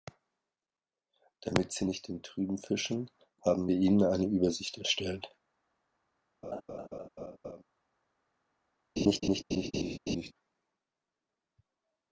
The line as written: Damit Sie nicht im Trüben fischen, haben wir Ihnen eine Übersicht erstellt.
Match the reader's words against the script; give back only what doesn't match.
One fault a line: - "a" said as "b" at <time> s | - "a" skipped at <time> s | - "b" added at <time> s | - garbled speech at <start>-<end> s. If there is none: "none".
none